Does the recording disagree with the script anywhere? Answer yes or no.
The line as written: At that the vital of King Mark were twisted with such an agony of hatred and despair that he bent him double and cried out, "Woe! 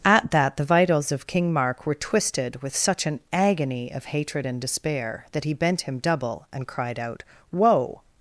yes